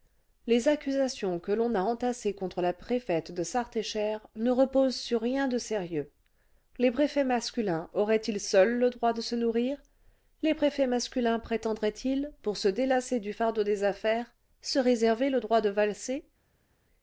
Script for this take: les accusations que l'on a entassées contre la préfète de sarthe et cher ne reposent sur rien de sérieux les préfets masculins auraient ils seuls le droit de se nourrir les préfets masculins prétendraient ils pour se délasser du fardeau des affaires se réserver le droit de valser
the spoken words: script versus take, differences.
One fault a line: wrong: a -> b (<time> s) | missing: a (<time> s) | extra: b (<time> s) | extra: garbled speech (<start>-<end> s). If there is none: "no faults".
no faults